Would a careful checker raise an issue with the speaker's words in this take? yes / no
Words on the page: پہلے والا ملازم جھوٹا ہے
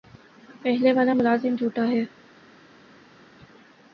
no